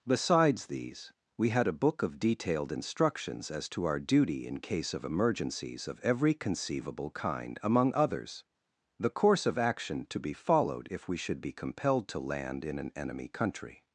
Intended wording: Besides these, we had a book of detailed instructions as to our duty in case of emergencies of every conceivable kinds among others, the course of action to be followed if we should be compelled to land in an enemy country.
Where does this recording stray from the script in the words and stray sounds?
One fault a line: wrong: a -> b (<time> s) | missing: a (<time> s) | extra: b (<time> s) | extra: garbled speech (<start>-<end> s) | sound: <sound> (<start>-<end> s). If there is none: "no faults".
wrong: kinds -> kind (7.1 s)